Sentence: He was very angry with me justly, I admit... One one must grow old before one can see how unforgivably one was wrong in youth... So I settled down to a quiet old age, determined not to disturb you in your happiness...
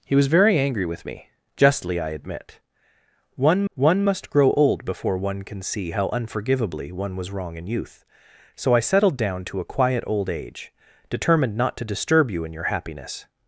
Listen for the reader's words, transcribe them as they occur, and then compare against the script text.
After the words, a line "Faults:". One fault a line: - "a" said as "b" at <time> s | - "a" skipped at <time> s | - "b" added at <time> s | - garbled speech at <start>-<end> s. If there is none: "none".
He was very angry with me justly, I admit... One one must grow old before one can see how unforgivably one was wrong in youth... So I settled down to a quiet old age, determined not to disturb you in your happiness...
Faults:
none